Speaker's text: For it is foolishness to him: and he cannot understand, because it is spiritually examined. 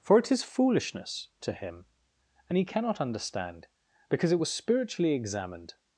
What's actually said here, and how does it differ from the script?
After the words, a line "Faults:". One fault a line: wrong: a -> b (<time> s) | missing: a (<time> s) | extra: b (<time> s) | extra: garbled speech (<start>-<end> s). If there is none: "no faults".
For it is foolishness to him: and he cannot understand, because it was spiritually examined.
Faults:
wrong: is -> was (4.4 s)